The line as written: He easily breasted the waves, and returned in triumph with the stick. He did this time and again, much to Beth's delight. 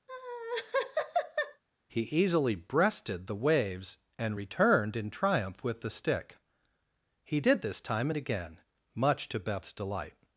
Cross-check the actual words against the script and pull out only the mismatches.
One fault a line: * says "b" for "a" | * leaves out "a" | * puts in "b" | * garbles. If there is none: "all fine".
all fine